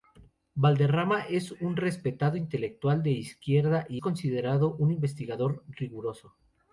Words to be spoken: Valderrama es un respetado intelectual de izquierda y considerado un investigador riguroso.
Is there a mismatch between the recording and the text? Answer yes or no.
no